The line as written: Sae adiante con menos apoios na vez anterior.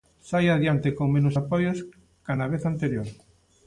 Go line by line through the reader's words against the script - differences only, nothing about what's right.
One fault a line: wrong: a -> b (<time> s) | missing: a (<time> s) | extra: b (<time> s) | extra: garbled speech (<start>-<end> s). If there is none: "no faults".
extra: ca (2.2 s)